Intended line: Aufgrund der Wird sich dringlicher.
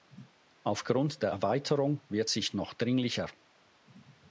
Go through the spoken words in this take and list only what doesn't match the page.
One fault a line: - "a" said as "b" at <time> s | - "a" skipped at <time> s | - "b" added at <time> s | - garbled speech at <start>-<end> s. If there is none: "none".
- "Erweiterung" added at 1.3 s
- "noch" added at 2.5 s